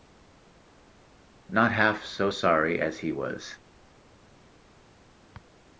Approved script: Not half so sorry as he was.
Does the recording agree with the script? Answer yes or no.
yes